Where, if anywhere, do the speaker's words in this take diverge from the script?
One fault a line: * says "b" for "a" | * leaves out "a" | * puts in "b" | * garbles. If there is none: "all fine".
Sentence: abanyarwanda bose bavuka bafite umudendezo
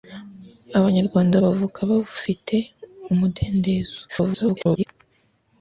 * leaves out "bose"
* garbles